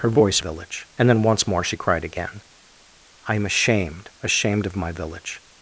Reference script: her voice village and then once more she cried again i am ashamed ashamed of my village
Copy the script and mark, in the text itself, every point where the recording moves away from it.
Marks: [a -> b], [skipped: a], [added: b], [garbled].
her voice village and then once more she cried again i am ashamed ashamed of my village